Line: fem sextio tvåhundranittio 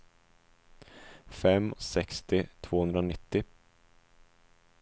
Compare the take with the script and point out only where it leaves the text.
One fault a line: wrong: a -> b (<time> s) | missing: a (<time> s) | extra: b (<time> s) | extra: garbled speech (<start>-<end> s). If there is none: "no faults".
no faults